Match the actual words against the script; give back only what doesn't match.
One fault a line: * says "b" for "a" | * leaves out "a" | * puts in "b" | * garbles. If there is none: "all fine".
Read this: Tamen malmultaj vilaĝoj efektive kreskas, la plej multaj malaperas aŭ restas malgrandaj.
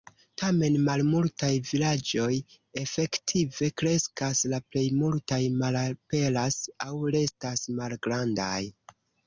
all fine